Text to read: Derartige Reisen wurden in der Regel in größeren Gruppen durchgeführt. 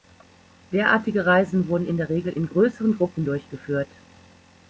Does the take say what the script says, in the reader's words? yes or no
yes